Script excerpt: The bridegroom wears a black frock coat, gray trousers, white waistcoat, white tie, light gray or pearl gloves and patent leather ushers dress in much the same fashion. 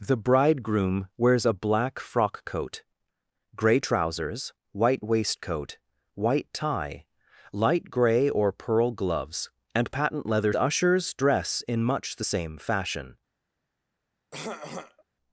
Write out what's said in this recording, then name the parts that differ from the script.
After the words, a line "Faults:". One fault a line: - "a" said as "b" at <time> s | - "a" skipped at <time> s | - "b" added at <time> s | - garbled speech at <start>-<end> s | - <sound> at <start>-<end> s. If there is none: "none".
The bridegroom wears a black frock coat, gray trousers, white waistcoat, white tie, light gray or pearl gloves and patent leather ushers dress in much the same fashion.
Faults:
- throat clearing at 14.3-15.0 s